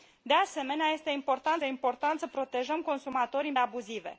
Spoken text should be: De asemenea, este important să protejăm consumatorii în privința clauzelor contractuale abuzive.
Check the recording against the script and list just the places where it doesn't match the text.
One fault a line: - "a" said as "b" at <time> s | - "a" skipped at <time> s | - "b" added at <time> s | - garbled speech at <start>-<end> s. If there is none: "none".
- "important" added at 1.6 s
- "privința clauzelor contractuale" skipped at 3.6 s